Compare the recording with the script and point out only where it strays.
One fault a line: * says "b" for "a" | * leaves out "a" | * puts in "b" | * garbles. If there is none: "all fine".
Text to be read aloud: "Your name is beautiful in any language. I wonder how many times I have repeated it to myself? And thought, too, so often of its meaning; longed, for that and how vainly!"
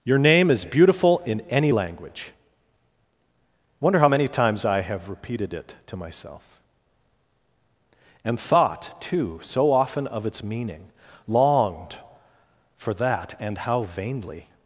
* leaves out "I"